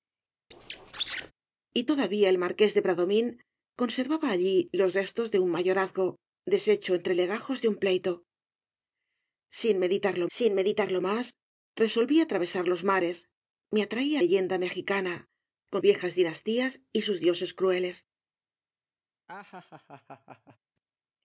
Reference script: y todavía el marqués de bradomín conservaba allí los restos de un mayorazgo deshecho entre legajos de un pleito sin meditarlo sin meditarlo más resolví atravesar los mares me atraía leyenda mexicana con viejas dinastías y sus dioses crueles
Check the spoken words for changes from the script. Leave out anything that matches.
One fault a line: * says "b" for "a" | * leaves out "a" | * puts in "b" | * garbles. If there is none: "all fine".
all fine